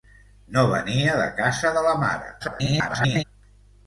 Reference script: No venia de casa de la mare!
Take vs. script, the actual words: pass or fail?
fail